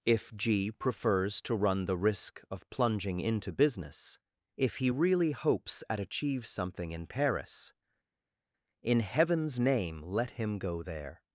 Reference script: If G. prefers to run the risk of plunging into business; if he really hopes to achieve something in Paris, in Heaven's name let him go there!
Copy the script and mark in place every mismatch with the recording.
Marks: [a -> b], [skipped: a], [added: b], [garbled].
If G. prefers to run the risk of plunging into business; if he really hopes [to -> at] achieve something in Paris, in Heaven's name let him go there!